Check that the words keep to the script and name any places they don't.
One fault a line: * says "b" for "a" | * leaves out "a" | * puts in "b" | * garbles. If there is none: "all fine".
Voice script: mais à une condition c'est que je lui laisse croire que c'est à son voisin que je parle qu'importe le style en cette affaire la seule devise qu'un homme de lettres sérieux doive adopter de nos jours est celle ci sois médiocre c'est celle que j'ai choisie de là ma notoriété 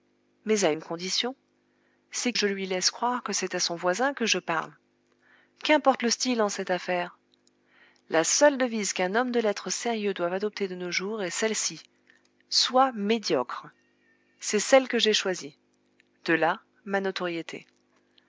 * leaves out "que"